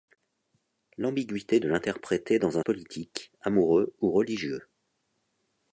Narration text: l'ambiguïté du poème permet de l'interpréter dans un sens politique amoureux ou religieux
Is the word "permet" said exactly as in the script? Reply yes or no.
no